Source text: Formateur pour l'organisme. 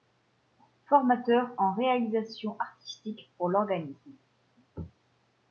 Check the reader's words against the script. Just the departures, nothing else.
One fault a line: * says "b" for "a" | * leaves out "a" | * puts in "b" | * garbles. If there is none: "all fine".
* puts in "en Réalisation Artistique"